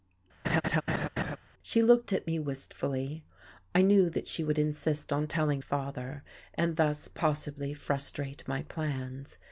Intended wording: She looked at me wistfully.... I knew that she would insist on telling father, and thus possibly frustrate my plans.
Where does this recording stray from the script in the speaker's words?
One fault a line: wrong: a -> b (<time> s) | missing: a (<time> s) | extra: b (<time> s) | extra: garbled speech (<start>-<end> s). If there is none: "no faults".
no faults